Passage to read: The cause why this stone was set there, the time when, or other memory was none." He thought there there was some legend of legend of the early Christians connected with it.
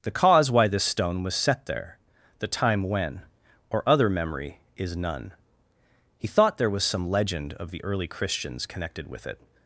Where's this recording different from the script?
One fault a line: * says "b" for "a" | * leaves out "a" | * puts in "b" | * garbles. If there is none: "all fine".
* says "is" for "was"
* leaves out "there"
* leaves out "legend of"